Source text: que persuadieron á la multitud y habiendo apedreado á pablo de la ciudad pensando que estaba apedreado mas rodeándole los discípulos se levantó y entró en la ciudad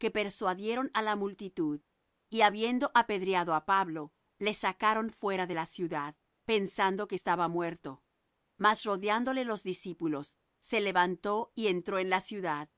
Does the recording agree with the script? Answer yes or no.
no